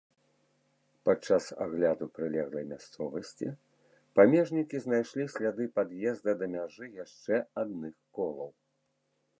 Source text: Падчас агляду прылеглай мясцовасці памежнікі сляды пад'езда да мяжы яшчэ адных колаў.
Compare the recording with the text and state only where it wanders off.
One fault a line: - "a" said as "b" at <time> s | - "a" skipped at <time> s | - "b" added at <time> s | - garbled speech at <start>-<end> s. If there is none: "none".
- "знайшлі" added at 4.9 s